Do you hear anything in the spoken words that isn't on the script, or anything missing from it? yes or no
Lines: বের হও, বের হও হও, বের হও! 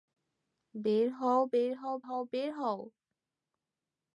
no